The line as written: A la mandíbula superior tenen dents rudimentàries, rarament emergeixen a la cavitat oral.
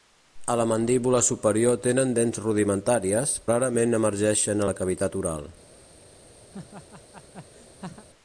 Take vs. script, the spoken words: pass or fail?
pass